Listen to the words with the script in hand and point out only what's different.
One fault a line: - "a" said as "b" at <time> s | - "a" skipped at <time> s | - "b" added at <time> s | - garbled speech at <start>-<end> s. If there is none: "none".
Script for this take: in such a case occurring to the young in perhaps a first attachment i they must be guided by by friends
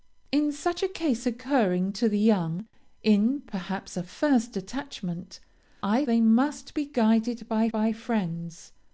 none